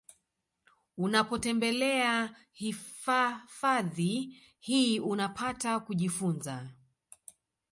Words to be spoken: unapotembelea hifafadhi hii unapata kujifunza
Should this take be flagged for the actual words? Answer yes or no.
no